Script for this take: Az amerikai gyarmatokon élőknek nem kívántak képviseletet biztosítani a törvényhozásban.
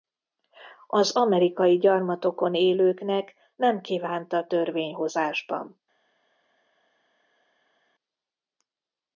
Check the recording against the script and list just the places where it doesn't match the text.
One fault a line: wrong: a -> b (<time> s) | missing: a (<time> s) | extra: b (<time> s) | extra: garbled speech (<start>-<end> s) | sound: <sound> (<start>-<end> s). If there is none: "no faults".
missing: képviseletet biztosítani a (4.5 s)